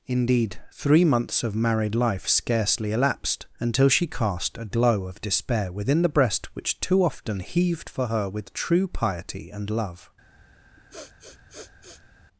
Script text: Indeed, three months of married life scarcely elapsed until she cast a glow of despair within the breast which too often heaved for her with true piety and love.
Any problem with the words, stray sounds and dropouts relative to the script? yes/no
yes